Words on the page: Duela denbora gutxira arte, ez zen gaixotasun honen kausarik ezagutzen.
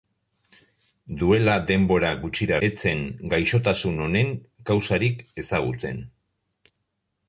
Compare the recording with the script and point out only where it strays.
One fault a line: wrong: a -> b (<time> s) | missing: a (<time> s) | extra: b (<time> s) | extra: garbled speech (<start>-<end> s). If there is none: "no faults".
missing: arte (2.6 s)